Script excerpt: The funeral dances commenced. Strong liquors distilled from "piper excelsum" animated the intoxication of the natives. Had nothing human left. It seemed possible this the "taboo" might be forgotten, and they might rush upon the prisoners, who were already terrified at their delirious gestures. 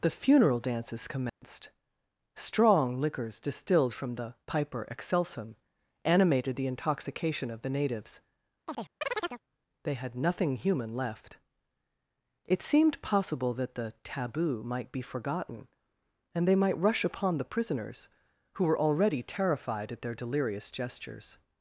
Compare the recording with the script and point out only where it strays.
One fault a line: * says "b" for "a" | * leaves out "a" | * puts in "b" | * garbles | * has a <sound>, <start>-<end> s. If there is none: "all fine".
* has a dropout, 1.3-1.4 s
* puts in "the"
* has a chirp, 8.7-9.4 s
* puts in "They"
* says "that" for "this"